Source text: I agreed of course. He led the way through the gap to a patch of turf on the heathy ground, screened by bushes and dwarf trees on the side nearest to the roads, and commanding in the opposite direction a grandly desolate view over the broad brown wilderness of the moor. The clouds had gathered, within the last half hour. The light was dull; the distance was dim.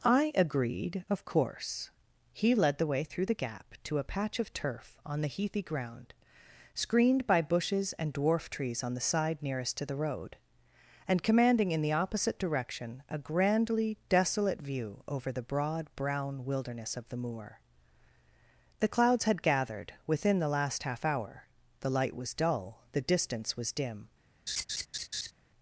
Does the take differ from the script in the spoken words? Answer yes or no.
yes